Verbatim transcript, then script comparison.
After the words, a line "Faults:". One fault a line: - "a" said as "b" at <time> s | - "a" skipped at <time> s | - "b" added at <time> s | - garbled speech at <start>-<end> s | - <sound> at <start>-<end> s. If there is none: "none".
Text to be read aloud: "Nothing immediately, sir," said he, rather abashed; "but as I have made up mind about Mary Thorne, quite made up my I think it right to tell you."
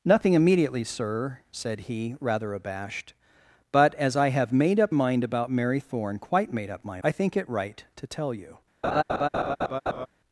"Nothing immediately, sir," said he, rather abashed; "but as I have made up mind about Mary Thorne, quite made up my I think it right to tell you."
Faults:
- laugh at 8.8-10.1 s